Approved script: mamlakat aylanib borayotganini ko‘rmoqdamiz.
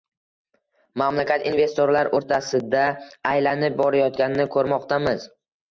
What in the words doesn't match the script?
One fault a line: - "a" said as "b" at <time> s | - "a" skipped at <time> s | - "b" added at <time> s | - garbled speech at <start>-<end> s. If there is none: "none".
- "investorlar o‘rtasida" added at 1.5 s